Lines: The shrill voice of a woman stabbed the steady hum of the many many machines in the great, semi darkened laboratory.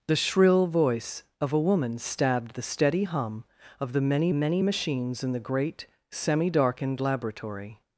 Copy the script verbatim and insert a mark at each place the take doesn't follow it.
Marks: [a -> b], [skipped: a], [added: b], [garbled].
The shrill voice of a woman stabbed the steady hum of the many many machines in the great, semi darkened laboratory.